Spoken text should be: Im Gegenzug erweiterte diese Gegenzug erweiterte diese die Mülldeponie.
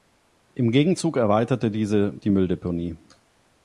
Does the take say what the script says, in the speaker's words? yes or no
no